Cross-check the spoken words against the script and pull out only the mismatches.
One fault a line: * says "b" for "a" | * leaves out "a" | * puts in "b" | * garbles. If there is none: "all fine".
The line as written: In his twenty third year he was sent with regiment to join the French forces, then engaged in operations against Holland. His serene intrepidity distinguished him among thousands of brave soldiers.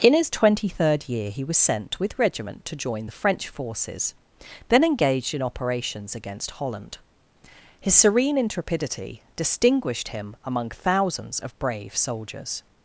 all fine